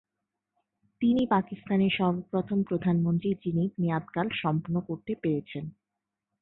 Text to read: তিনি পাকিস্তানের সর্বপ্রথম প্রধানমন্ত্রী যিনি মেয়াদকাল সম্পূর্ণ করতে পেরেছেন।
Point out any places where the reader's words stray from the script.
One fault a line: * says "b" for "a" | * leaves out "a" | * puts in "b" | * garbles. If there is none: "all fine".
all fine